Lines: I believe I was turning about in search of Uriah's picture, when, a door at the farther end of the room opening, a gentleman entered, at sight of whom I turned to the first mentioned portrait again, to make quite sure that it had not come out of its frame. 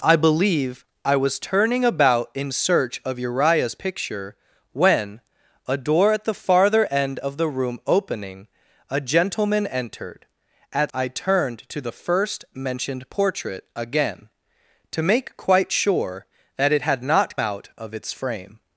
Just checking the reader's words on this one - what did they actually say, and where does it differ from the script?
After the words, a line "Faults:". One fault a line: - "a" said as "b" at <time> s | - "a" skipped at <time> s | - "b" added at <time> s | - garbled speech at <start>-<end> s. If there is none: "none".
I believe I was turning about in search of Uriah's picture, when, a door at the farther end of the room opening, a gentleman entered, at I turned to the first mentioned portrait again, to make quite sure that it had not out of its frame.
Faults:
- "sight of whom" skipped at 10.9 s
- "come" skipped at 17.4 s